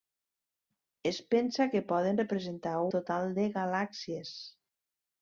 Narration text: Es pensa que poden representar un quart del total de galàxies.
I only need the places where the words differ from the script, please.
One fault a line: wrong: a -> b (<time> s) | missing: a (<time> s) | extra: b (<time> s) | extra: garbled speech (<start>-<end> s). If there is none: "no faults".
missing: un quart del (2.8 s)